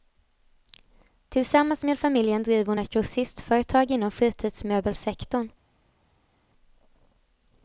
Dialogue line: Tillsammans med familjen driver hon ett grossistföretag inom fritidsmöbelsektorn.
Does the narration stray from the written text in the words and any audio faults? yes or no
no